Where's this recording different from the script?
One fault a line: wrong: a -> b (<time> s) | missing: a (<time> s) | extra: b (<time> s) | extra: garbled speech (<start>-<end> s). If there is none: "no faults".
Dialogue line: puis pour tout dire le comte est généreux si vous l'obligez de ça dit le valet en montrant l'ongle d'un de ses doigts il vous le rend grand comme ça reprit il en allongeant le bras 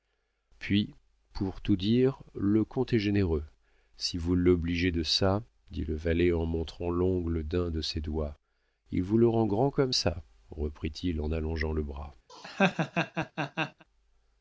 no faults